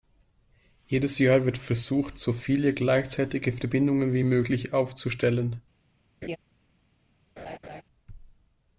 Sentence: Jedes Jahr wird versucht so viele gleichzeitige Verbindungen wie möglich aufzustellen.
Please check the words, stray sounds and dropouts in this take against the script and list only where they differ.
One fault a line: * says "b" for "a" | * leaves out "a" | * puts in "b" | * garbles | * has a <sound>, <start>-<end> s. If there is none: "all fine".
* has a laugh, 6.2-6.4 s
* has a laugh, 7.4-7.8 s